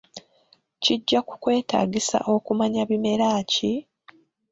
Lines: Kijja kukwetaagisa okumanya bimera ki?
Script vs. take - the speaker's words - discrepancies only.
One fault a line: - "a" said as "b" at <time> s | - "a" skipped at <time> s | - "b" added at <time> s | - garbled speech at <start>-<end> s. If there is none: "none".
none